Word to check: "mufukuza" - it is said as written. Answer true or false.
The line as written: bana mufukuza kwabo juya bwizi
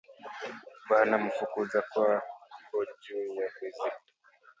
true